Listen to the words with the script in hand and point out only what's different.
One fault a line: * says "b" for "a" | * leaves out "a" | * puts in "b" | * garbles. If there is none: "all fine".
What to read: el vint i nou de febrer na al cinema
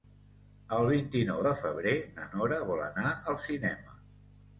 * puts in "nora vol anar"